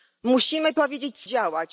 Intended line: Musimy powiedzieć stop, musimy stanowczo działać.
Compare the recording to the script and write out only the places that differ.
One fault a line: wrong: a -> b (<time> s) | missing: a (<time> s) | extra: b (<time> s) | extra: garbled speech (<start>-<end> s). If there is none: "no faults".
missing: stop musimy stanowczo (1.2 s)